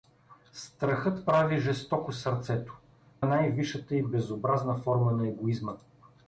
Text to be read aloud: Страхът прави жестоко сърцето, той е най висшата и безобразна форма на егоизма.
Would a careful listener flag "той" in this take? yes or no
yes